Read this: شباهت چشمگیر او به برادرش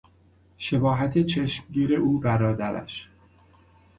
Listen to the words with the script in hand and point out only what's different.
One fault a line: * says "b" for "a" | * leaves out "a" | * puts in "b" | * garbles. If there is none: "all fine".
* leaves out "به"